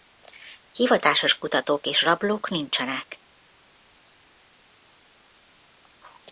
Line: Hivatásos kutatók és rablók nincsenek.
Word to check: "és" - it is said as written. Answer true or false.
true